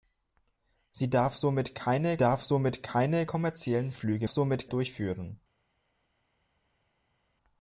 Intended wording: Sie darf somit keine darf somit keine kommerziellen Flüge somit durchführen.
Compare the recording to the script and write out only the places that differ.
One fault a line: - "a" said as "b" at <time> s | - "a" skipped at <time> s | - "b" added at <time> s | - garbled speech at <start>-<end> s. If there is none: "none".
none